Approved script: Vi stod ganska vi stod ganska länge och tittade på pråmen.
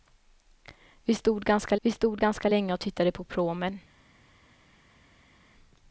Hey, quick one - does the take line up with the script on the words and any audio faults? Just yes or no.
yes